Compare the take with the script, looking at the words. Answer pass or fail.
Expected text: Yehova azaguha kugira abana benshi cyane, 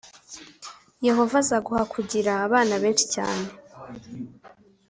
pass